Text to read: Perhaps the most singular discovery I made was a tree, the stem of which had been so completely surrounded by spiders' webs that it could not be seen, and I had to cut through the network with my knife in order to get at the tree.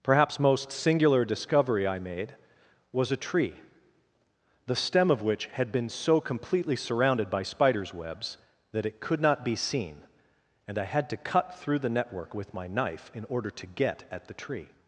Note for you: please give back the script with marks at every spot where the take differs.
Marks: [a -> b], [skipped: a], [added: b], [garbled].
Perhaps [skipped: the] most singular discovery I made was a tree, the stem of which had been so completely surrounded by spiders' webs that it could not be seen, and I had to cut through the network with my knife in order to get at the tree.